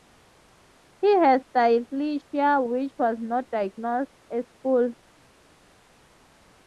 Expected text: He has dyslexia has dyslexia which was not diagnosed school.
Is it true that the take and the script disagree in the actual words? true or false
true